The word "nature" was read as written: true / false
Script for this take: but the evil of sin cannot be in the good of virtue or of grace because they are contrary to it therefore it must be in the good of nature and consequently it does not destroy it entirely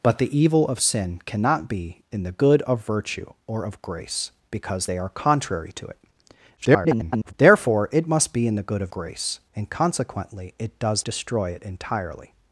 false